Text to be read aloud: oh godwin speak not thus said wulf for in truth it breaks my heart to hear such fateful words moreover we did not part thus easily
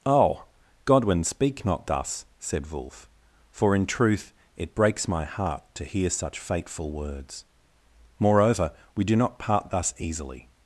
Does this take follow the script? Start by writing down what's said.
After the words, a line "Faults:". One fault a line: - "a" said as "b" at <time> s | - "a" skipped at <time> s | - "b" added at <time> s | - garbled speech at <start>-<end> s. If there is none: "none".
oh godwin speak not thus said wulf for in truth it breaks my heart to hear such fateful words moreover we do not part thus easily
Faults:
- "did" said as "do" at 9.0 s